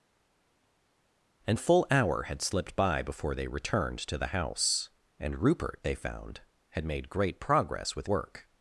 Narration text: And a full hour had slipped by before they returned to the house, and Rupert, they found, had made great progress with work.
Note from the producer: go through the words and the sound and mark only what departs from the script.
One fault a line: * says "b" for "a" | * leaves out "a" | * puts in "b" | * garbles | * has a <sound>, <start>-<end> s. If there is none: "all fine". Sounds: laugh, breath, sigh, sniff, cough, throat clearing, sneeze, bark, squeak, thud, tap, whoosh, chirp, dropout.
all fine